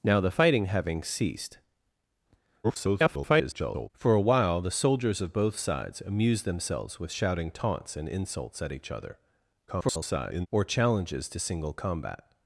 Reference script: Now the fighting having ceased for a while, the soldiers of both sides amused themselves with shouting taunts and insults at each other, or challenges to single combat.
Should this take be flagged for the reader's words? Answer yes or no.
yes